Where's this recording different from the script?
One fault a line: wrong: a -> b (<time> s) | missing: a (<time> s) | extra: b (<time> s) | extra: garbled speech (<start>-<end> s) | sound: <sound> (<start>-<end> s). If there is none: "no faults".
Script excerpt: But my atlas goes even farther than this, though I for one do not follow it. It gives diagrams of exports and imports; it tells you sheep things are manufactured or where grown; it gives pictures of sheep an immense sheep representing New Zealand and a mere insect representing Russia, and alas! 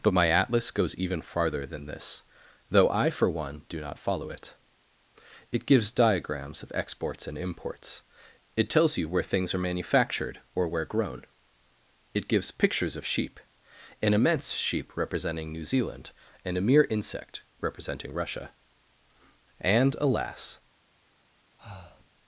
wrong: sheep -> where (9.1 s)
sound: breath (21.6-22.1 s)